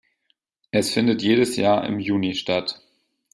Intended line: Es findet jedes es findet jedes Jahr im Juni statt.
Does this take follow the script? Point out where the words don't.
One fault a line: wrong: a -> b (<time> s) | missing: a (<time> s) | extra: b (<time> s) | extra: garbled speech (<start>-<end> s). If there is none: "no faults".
missing: es findet jedes (1.6 s)